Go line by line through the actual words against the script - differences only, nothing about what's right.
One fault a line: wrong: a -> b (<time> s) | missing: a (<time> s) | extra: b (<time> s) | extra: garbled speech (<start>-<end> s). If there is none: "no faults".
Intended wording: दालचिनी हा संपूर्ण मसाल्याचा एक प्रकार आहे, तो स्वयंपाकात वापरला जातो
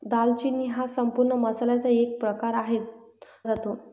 missing: तो स्वयंपाकात वापरला (2.8 s)